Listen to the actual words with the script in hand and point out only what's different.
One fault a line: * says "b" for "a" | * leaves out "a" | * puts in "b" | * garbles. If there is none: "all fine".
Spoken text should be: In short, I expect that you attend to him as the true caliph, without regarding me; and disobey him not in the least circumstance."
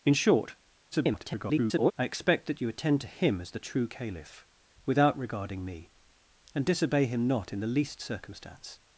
* garbles